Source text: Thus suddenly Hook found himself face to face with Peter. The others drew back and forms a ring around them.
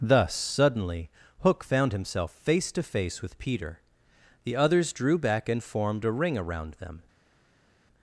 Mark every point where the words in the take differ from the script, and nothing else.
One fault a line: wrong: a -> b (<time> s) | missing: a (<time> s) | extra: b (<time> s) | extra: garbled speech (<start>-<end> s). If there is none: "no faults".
wrong: forms -> formed (5.6 s)